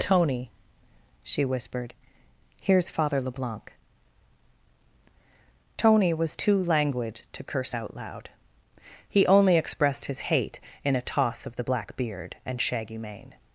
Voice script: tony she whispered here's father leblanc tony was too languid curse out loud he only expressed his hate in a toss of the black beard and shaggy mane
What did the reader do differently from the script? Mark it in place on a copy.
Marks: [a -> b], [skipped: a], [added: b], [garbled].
tony she whispered here's father leblanc tony was too languid [added: to] curse out loud he only expressed his hate in a toss of the black beard and shaggy mane